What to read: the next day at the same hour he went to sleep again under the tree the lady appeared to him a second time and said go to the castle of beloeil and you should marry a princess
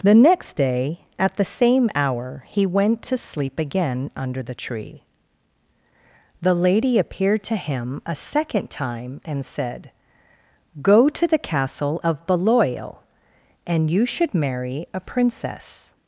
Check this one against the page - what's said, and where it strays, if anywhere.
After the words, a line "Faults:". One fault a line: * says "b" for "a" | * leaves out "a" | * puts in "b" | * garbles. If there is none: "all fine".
the next day at the same hour he went to sleep again under the tree the lady appeared to him a second time and said go to the castle of beloeil and you should marry a princess
Faults:
all fine